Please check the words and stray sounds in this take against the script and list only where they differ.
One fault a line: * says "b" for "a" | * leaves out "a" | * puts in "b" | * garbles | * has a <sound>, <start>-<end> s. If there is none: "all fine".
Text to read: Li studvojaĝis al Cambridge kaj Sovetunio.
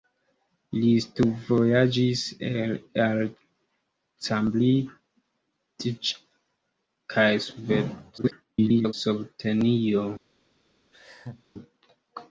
* garbles
* has a laugh, 10.9-11.4 s